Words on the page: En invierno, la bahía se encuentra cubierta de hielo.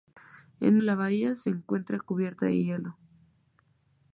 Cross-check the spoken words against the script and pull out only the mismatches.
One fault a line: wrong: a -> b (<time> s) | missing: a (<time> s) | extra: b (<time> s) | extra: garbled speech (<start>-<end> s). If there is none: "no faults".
missing: invierno (0.8 s)